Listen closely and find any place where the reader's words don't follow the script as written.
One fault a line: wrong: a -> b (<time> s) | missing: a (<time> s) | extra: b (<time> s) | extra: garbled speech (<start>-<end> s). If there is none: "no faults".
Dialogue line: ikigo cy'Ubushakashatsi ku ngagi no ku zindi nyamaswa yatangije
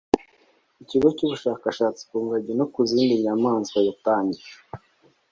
no faults